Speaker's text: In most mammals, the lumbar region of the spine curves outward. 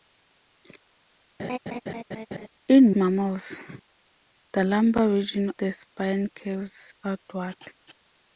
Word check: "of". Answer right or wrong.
wrong